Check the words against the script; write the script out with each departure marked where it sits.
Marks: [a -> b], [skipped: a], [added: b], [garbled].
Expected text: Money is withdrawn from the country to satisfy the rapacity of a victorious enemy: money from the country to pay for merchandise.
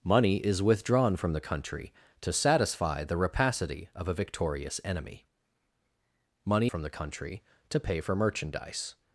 Money is withdrawn from the country to satisfy the rapacity of a victorious enemy: money from the country to pay for merchandise.